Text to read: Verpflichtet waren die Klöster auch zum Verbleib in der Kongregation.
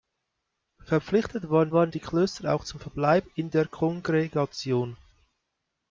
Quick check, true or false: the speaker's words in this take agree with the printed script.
false